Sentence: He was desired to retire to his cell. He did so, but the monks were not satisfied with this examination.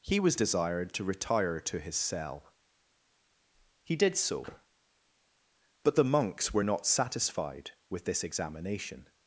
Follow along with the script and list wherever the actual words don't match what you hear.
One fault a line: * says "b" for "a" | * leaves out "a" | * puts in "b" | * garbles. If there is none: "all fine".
all fine